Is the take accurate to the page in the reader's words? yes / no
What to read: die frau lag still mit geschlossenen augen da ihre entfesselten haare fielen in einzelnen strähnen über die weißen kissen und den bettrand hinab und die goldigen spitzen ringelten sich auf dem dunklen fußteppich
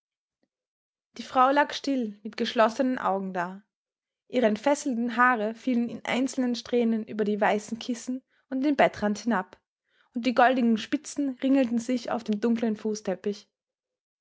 yes